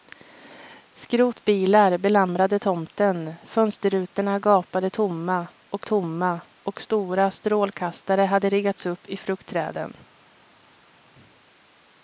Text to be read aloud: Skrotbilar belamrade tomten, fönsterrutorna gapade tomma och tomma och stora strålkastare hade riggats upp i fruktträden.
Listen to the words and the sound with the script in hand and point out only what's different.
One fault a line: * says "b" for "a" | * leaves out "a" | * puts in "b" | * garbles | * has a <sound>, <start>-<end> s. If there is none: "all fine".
all fine